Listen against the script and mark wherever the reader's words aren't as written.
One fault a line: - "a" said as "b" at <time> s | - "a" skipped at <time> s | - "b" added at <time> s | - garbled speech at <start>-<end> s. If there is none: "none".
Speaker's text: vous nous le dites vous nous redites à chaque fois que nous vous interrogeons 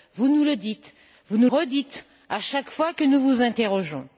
none